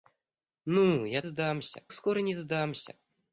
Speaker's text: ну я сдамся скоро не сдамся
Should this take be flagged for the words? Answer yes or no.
no